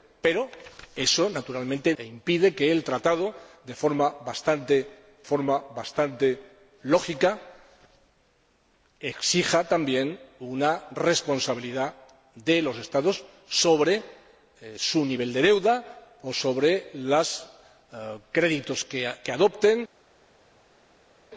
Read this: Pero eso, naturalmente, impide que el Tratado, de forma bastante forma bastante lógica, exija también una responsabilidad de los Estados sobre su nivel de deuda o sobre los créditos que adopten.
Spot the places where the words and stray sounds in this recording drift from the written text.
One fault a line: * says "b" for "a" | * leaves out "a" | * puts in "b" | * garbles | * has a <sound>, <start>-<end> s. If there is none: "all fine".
all fine